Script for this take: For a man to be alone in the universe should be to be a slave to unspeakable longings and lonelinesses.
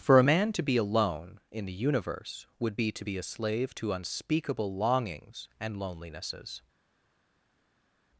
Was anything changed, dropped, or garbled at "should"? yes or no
yes